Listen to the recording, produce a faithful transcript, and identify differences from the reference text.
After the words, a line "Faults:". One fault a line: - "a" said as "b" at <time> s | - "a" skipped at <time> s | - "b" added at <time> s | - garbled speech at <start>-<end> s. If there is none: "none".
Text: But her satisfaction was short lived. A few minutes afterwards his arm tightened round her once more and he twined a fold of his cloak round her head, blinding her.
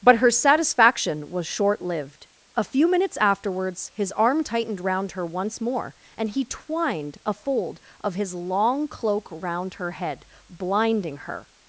But her satisfaction was short lived. A few minutes afterwards his arm tightened round her once more and he twined a fold of his long cloak round her head, blinding her.
Faults:
- "long" added at 8.3 s